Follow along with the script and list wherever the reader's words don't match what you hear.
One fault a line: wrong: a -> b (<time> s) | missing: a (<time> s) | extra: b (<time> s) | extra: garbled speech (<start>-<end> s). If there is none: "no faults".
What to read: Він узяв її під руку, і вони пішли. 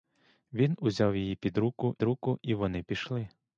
extra: руку (2.0 s)